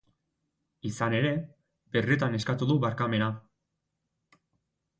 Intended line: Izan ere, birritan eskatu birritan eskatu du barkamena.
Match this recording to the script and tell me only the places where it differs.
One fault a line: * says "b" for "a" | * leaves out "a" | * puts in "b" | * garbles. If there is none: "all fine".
* leaves out "birritan eskatu"